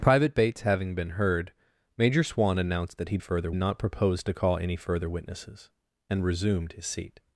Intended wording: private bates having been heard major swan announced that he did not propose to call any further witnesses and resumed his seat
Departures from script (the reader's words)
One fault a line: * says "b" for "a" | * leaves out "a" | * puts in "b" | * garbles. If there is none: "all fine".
* says "further" for "did"